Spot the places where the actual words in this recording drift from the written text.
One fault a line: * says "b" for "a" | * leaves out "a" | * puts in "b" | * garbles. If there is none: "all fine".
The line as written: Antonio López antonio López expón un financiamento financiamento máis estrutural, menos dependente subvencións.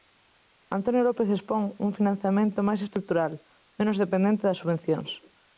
* leaves out "antonio López"
* leaves out "financiamento"
* puts in "das"